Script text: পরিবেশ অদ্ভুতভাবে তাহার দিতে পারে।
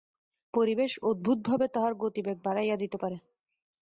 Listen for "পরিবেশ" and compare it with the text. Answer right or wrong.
right